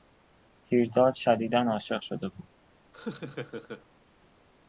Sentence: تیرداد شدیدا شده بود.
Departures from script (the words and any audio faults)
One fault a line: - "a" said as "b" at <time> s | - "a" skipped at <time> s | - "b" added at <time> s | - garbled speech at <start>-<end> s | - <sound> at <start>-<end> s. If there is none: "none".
- "عاشق" added at 1.6 s
- laugh at 2.9-3.8 s